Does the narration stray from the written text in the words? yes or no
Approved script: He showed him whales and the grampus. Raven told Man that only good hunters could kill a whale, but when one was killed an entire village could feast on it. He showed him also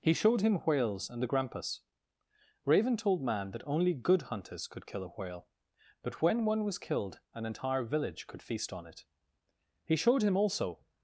no